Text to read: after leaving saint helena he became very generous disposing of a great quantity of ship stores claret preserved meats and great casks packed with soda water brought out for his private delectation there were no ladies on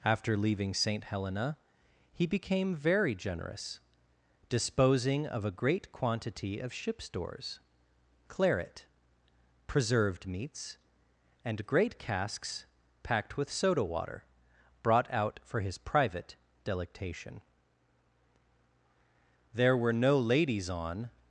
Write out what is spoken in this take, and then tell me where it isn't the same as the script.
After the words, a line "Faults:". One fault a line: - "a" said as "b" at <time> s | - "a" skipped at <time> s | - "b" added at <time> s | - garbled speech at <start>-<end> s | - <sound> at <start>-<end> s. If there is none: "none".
after leaving saint helena he became very generous disposing of a great quantity of ship stores claret preserved meats and great casks packed with soda water brought out for his private delectation there were no ladies on
Faults:
none